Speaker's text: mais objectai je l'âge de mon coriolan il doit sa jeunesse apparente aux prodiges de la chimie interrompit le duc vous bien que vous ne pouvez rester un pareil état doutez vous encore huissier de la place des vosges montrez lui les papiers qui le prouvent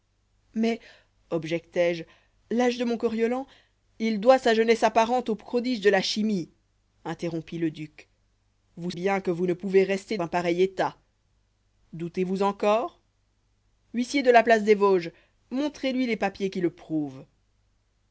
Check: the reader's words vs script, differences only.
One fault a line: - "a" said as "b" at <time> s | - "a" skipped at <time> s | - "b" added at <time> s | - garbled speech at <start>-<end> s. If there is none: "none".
none